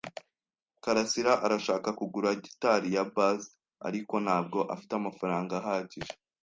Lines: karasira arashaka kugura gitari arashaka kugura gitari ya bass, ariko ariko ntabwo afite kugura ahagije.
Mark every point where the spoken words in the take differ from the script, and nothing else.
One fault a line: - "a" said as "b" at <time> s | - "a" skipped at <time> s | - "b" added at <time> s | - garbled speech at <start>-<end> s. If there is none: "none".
- "arashaka kugura gitari" skipped at 2.9 s
- "ariko" skipped at 4.1 s
- "kugura" said as "amafaranga" at 5.0 s